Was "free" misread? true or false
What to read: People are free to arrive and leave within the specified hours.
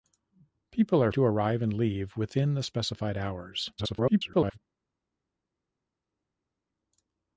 true